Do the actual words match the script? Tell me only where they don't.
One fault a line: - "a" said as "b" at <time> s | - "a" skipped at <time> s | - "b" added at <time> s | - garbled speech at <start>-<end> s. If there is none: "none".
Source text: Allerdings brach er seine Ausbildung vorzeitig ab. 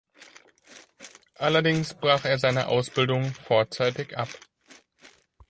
none